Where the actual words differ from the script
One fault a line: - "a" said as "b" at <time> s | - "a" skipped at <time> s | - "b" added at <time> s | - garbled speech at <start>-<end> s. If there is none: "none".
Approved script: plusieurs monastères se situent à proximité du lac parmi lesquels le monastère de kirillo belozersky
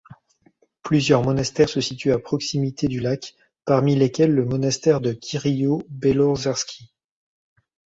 none